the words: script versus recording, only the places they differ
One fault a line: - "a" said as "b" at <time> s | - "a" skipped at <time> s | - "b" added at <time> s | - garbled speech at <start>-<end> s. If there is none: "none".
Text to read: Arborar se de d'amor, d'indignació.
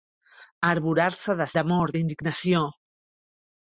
none